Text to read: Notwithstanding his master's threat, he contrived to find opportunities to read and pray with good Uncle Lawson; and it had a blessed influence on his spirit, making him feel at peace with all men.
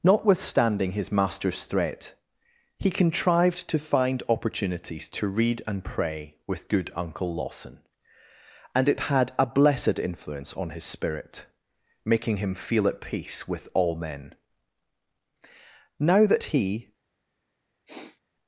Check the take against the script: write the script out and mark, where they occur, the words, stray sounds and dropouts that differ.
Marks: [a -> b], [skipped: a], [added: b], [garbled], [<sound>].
Notwithstanding his master's threat, he contrived to find opportunities to read and pray with good Uncle Lawson; and it had a blessed influence on his spirit, making him feel at peace with all men. [added: Now that he] [sniff]